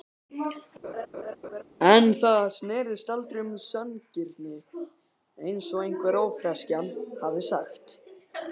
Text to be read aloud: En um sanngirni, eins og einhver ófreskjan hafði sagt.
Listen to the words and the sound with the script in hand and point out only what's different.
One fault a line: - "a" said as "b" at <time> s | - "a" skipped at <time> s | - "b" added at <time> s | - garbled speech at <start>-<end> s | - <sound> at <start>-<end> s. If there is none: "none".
- laugh at 0.8-1.6 s
- "það snerist aldrei" added at 2.2 s